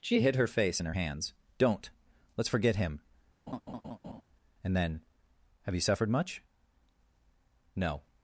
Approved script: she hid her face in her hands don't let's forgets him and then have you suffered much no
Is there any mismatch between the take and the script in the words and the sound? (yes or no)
yes